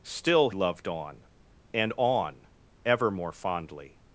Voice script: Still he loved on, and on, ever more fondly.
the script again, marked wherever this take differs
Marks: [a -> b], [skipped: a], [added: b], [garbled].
Still [skipped: he] loved on, and on, ever more fondly.